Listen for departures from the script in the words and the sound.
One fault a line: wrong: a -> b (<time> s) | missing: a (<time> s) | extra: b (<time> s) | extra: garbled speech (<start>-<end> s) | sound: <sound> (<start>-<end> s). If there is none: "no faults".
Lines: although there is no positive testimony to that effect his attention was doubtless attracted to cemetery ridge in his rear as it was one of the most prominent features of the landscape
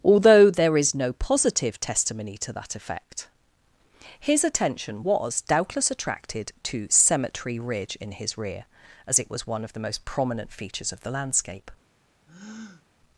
sound: breath (12.3-12.9 s)